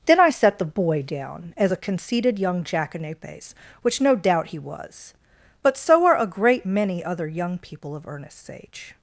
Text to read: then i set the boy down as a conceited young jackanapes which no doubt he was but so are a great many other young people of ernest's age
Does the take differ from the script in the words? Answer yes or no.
no